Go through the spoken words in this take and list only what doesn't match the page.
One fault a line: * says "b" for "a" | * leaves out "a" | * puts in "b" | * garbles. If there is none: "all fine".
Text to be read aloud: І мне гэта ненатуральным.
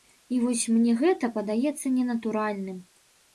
* puts in "вось"
* puts in "падаецца"